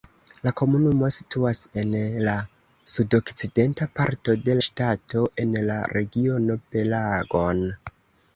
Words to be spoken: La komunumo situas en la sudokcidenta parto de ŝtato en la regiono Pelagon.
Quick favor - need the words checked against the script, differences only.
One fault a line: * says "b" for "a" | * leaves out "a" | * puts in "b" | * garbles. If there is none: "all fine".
all fine